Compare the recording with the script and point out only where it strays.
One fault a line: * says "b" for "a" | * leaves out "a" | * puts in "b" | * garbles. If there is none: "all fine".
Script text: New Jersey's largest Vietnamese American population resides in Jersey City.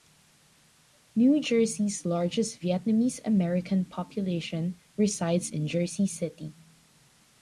all fine